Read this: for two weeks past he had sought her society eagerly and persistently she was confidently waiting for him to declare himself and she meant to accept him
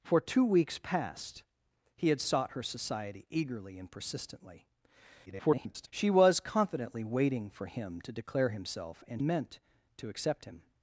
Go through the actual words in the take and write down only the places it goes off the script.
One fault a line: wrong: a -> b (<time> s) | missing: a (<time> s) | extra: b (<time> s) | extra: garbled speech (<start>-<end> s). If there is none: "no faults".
extra: garbled speech (5.3-5.9 s)
missing: she (9.2 s)